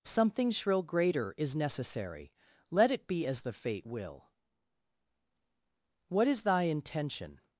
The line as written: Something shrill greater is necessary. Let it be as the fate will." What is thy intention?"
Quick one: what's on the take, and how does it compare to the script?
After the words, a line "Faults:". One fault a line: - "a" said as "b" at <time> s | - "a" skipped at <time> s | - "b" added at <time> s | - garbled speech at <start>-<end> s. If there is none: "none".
Something shrill greater is necessary. Let it be as the fate will." What is thy intention?"
Faults:
none